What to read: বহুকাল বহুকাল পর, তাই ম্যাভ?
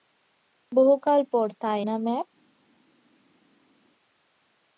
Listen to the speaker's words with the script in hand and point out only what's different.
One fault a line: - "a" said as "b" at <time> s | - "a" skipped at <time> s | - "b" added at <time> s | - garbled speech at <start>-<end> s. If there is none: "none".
- "বহুকাল" skipped at 1.2 s
- "না" added at 1.8 s